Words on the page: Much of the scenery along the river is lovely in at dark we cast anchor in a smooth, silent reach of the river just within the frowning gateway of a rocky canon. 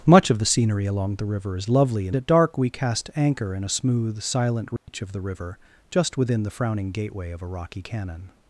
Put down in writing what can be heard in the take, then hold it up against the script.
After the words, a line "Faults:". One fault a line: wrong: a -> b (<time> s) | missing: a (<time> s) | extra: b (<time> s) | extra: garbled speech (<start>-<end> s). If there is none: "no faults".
Much of the scenery along the river is lovely in at dark we cast anchor in a smooth, silent reach of the river just within the frowning gateway of a rocky canon.
Faults:
no faults